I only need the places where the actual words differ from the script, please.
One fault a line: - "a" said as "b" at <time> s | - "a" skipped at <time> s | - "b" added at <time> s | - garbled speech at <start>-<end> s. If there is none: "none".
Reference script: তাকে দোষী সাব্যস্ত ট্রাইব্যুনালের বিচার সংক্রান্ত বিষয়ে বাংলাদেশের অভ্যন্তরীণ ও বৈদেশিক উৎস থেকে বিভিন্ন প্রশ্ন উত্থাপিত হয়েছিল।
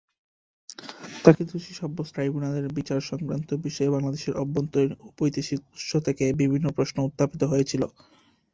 none